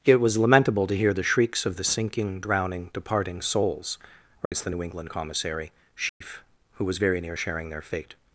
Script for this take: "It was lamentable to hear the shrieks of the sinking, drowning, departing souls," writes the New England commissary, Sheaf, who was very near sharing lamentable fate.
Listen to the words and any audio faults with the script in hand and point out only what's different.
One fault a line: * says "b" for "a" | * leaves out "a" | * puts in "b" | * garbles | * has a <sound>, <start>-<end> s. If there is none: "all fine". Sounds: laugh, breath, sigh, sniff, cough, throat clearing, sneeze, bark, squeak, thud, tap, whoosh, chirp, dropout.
* has a dropout, 4.5-4.5 s
* has a dropout, 6.1-6.2 s
* says "their" for "lamentable"